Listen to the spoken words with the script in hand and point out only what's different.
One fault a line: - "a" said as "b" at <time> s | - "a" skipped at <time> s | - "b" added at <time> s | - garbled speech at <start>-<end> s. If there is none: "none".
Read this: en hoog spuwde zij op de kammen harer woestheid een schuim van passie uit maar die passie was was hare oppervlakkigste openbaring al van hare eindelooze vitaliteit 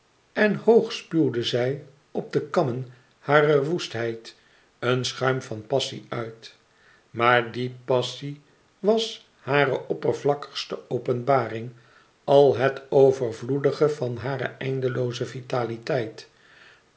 - "was" skipped at 9.3 s
- "het overvloedige" added at 12.6 s